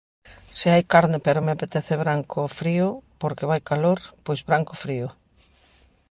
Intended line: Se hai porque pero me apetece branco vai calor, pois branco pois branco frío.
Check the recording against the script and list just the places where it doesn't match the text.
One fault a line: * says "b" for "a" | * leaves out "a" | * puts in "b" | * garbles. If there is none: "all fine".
* says "carne" for "porque"
* puts in "frío porque"
* leaves out "pois branco"